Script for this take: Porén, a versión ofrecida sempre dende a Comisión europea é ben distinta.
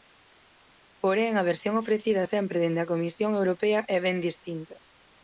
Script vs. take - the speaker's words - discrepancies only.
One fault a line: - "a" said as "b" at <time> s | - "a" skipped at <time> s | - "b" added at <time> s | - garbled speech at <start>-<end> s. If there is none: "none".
none